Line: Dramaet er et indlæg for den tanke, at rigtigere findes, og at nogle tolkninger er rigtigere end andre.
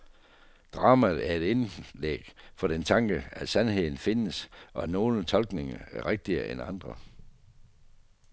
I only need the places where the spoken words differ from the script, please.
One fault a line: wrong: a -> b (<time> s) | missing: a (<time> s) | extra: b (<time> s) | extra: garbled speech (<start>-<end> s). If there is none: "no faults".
wrong: rigtigere -> sandheden (3.5 s)